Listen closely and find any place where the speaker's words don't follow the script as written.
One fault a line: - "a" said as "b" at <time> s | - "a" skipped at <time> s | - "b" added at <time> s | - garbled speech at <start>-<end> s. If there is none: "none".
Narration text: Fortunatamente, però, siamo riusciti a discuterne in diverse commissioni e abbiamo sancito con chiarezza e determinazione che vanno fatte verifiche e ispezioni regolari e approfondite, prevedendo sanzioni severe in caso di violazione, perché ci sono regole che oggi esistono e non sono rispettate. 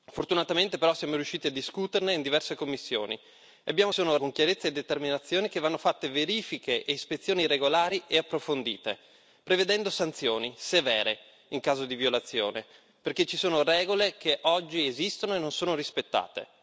- "sancito" said as "sono" at 3.9 s